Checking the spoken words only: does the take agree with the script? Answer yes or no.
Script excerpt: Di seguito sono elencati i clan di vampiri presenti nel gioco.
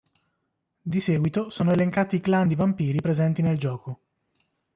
yes